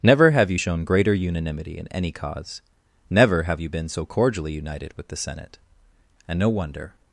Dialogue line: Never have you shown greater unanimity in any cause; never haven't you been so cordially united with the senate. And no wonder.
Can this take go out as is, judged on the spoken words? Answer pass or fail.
fail